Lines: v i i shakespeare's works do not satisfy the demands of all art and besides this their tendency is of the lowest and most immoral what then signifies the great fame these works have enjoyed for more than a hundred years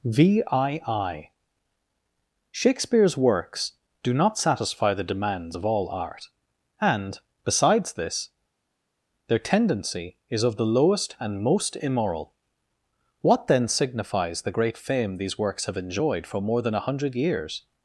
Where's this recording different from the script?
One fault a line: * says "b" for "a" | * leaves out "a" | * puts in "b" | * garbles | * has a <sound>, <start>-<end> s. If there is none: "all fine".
all fine